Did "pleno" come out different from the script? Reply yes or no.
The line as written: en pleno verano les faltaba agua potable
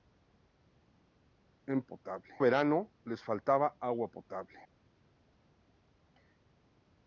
yes